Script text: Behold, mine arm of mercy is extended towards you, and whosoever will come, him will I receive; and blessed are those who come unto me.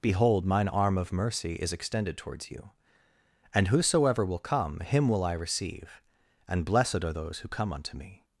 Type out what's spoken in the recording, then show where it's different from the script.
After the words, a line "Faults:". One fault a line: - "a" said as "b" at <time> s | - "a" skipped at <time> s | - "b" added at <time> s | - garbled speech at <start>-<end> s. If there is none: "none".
Behold, mine arm of mercy is extended towards you, and whosoever will come, him will I receive; and blessed are those who come unto me.
Faults:
none